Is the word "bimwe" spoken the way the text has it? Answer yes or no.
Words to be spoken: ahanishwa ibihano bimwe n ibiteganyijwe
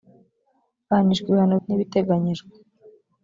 no